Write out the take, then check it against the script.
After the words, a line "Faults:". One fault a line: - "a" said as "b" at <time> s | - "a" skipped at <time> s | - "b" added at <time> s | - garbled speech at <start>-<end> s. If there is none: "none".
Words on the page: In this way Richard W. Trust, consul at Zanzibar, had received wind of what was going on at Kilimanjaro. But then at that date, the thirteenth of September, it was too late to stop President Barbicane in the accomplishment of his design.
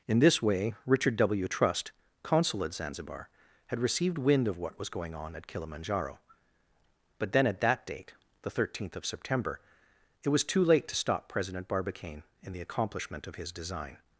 In this way Richard W. Trust, consul at Zanzibar, had received wind of what was going on at Kilimanjaro. But then at that date, the thirteenth of September, it was too late to stop President Barbicane in the accomplishment of his design.
Faults:
none